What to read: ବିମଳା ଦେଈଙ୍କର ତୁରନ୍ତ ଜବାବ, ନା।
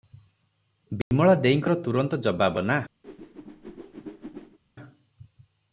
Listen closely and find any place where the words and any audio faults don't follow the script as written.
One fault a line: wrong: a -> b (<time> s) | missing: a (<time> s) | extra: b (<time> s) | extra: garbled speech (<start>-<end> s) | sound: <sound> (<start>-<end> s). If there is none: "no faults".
sound: dropout (1.0-1.1 s)
sound: whoosh (3.0-4.6 s)